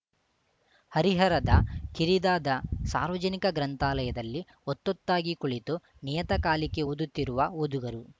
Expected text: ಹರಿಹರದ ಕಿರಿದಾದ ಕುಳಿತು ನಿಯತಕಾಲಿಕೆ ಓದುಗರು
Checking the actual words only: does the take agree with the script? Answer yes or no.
no